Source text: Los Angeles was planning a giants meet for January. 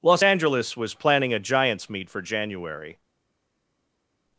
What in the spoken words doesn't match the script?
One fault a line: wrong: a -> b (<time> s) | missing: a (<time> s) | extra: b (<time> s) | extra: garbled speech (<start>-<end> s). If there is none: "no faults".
no faults